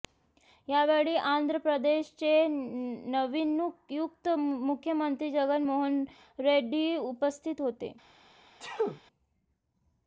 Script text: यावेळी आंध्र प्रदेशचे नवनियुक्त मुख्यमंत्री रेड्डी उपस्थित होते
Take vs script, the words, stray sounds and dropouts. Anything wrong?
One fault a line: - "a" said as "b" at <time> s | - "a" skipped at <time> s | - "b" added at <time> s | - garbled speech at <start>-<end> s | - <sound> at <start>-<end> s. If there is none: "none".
- "जगन मोहन" added at 5.3 s
- sneeze at 8.6-9.0 s